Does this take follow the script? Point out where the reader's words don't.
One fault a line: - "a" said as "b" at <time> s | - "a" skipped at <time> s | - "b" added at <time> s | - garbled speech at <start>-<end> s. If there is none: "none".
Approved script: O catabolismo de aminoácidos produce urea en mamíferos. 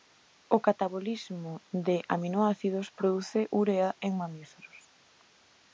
none